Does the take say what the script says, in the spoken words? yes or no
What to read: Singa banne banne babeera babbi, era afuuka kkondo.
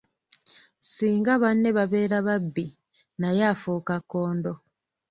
no